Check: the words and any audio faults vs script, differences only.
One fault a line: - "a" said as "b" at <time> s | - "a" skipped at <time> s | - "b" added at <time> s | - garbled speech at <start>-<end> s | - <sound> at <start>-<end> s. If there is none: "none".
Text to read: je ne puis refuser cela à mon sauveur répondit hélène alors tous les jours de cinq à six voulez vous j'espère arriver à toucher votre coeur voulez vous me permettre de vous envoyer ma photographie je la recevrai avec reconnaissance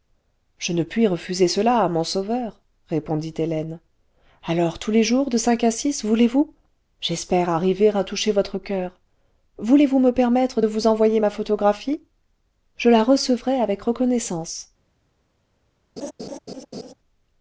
- laugh at 16.0-16.9 s